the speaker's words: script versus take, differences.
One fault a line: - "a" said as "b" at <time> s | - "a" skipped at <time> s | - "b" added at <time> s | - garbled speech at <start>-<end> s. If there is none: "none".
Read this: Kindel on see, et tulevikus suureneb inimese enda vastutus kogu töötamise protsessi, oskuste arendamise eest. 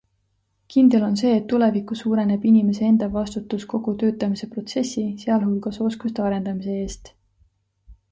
- "sealhulgas" added at 5.3 s